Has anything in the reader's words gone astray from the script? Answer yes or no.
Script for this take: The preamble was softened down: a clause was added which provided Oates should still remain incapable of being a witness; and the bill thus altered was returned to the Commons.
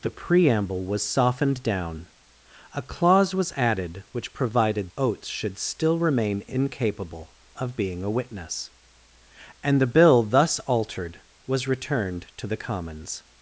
no